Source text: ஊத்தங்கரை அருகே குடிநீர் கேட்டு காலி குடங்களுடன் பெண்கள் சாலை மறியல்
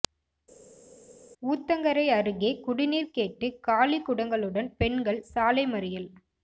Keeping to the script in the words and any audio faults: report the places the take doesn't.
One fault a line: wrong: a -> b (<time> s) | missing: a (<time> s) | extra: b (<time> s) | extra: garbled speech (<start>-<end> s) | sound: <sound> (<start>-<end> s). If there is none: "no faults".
no faults